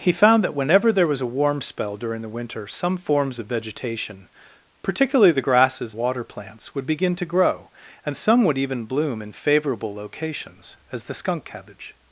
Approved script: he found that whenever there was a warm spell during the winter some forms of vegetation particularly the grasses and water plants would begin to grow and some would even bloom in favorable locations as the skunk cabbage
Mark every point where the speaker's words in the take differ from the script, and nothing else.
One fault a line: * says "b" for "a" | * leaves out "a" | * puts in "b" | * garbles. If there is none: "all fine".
* leaves out "and"